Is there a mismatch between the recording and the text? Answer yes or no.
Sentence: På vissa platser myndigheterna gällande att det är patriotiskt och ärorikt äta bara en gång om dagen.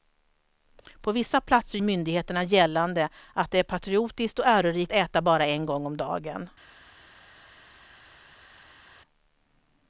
no